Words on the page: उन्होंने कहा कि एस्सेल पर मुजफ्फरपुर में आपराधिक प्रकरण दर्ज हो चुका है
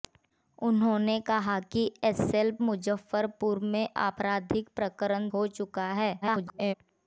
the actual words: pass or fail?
fail